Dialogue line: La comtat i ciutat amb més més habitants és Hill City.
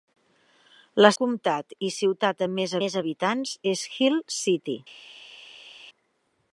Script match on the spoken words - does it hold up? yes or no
yes